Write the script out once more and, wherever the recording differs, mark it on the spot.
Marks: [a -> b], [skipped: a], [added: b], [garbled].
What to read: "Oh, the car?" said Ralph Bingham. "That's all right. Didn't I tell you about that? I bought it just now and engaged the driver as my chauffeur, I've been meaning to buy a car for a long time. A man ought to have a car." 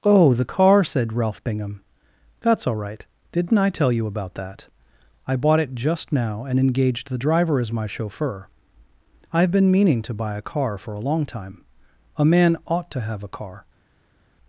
"Oh, the car?" said Ralph Bingham. "That's all right. Didn't I tell you about that? I bought it just now and engaged the driver as my chauffeur, I've been meaning to buy a car for a long time. A man ought to have a car."